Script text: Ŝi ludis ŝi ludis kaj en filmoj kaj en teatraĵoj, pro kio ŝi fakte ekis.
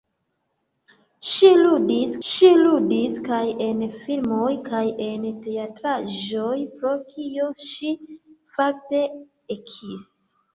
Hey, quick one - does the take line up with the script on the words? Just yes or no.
yes